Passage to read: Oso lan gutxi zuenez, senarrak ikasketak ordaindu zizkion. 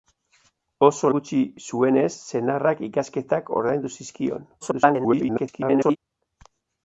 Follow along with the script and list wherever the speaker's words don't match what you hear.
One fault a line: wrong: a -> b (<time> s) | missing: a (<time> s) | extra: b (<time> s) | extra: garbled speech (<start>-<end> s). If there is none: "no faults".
missing: lan (1.1 s)
extra: garbled speech (4.6-6.0 s)